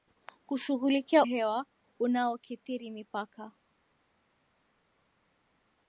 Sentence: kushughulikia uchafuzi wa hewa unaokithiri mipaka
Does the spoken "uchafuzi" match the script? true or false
false